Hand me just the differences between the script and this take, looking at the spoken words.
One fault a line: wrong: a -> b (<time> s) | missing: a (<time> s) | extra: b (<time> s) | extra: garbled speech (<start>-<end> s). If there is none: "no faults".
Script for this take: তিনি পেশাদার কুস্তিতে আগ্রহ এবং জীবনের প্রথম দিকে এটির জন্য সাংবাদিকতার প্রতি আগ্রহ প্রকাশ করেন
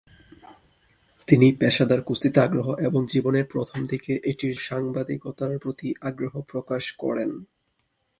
missing: জন্য (4.5 s)